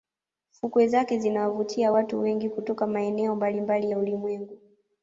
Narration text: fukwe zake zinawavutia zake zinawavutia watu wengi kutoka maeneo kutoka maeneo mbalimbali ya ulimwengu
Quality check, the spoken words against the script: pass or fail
fail